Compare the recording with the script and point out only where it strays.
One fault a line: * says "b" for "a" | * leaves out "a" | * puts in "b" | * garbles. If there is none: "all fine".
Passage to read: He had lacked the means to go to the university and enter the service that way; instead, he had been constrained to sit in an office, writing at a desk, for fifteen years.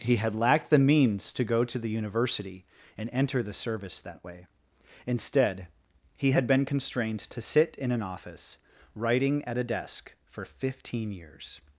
all fine